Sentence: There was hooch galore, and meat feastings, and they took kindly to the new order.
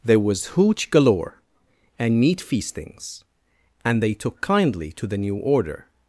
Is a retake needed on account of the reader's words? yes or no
no